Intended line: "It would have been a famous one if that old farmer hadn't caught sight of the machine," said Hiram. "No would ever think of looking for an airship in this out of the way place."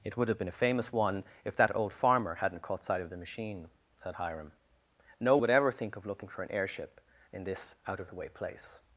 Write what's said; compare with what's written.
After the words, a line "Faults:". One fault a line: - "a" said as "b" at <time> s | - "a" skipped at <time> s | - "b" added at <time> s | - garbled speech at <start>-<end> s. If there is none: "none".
"It would have been a famous one if that old farmer hadn't caught sight of the machine," said Hiram. "No would ever think of looking for an airship in this out of the way place."
Faults:
none